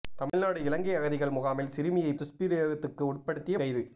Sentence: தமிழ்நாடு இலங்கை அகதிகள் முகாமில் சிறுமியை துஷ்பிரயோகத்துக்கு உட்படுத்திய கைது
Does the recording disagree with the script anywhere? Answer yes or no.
no